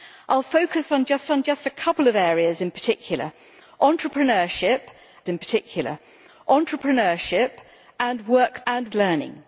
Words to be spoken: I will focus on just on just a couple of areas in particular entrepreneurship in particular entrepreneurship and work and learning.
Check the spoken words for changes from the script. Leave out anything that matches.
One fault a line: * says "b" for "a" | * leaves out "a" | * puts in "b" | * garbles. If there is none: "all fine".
all fine